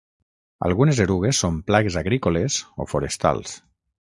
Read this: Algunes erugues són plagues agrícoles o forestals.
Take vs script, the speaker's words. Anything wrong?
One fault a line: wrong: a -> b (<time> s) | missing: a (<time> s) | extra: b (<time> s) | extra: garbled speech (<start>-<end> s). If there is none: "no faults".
no faults